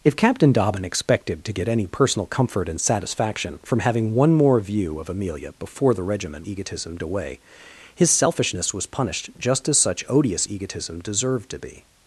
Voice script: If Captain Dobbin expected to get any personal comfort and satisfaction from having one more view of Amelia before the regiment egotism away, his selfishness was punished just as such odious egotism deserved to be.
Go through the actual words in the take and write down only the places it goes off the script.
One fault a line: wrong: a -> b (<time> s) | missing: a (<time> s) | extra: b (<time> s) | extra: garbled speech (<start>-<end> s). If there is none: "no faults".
no faults